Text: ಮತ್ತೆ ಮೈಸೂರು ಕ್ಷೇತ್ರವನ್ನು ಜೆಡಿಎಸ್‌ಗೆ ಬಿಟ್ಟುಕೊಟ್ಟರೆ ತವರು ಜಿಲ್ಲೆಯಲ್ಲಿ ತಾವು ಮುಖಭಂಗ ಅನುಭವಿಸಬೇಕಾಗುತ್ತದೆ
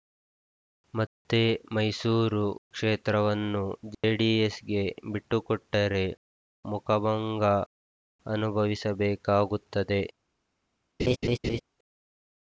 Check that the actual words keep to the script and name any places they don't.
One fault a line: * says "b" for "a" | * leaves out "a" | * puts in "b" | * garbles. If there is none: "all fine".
* leaves out "ತವರು ಜಿಲ್ಲೆಯಲ್ಲಿ ತಾವು"